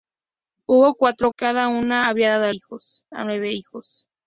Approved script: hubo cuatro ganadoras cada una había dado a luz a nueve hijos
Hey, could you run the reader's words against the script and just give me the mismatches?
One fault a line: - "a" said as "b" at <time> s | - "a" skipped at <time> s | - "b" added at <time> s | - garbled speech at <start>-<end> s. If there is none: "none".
- "ganadoras" skipped at 1.3 s
- "luz" said as "hijos" at 2.5 s